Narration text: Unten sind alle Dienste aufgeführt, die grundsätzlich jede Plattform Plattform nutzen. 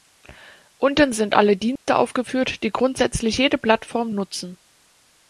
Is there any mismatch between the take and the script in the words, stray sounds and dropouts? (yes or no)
yes